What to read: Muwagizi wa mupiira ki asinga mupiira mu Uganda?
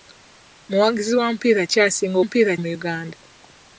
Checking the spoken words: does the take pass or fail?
pass